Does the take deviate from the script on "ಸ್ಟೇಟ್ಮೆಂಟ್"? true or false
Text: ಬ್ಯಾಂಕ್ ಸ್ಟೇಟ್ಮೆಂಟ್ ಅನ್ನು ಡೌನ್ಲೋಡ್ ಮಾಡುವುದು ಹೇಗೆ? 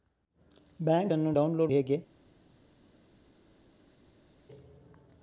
true